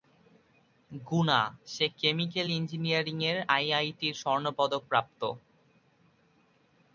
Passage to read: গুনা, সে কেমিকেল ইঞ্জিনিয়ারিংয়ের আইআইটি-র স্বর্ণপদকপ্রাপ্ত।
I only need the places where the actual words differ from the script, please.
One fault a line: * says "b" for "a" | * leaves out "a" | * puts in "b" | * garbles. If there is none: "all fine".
all fine